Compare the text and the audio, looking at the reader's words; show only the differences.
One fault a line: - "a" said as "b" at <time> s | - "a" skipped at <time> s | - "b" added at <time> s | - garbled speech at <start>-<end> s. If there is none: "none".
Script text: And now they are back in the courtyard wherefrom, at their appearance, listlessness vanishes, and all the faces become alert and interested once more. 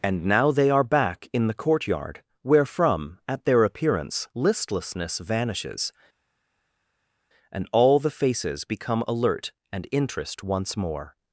- "interested" said as "interest" at 9.9 s